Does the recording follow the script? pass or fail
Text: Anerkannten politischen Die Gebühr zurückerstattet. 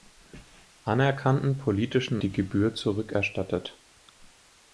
pass